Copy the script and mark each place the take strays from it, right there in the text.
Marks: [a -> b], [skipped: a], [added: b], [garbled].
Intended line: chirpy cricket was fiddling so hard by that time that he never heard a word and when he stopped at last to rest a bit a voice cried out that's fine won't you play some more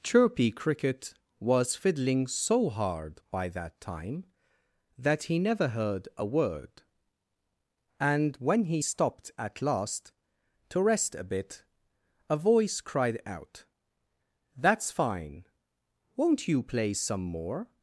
chirpy cricket was fiddling so hard by that time that he never heard a word and when he stopped at last to rest a bit a voice cried out that's fine won't you play some more